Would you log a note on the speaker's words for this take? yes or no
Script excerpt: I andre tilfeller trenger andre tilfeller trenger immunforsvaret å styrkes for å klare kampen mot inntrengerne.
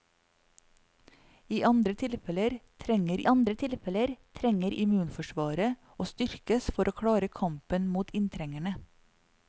no